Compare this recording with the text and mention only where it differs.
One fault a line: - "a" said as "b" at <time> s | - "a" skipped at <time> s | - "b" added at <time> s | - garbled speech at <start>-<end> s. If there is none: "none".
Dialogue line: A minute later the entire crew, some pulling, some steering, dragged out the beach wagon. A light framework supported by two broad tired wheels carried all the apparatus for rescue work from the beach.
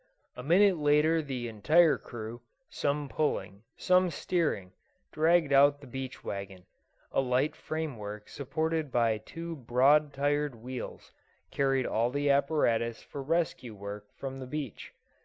none